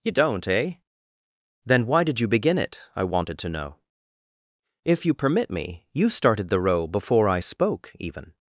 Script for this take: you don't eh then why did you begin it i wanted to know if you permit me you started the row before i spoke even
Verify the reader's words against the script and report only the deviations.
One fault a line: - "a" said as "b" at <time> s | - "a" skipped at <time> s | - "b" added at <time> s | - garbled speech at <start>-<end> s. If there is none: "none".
none